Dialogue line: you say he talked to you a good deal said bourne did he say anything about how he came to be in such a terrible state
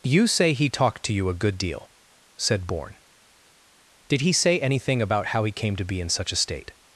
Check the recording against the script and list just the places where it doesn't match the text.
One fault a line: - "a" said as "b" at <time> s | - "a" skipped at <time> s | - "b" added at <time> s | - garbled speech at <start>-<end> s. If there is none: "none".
- "terrible" skipped at 6.3 s